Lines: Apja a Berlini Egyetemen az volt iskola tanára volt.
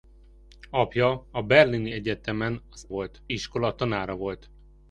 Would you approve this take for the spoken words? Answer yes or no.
yes